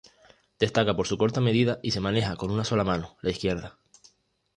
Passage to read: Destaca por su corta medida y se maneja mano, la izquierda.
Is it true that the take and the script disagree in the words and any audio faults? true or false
true